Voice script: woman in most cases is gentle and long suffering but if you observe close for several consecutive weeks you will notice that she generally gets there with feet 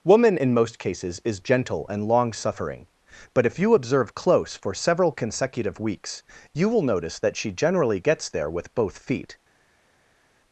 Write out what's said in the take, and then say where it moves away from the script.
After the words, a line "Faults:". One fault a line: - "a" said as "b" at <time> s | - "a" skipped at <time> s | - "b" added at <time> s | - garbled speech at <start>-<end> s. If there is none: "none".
woman in most cases is gentle and long suffering but if you observe close for several consecutive weeks you will notice that she generally gets there with both feet
Faults:
- "both" added at 8.7 s